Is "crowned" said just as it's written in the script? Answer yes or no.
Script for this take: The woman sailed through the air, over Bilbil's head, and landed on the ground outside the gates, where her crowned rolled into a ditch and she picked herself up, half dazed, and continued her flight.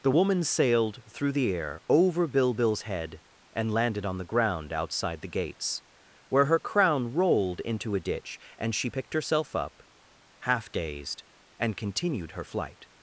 no